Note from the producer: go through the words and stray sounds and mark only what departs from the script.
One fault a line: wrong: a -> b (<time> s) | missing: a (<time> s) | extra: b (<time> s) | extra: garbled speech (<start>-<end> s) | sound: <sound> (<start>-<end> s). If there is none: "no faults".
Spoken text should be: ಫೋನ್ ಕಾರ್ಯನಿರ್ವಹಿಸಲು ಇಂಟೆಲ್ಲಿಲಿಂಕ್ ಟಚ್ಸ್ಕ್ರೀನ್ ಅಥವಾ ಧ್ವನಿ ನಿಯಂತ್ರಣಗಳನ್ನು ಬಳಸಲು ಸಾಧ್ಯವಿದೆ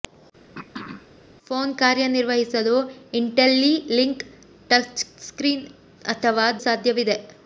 sound: throat clearing (0.5-1.1 s)
missing: ಧ್ವನಿ ನಿಯಂತ್ರಣಗಳನ್ನು ಬಳಸಲು (6.5 s)